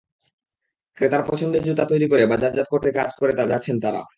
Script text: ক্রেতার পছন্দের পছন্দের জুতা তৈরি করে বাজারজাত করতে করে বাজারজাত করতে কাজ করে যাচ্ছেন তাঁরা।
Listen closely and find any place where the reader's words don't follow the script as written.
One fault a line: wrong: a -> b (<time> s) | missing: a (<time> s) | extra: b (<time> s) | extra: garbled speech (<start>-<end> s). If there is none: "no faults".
missing: পছন্দের (1.6 s)
missing: করে বাজারজাত করতে (2.9 s)